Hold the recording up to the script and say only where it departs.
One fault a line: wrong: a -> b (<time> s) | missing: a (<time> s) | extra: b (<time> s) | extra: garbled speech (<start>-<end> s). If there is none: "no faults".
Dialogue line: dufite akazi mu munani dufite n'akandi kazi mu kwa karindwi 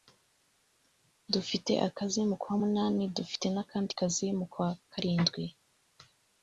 extra: kwa (2.4 s)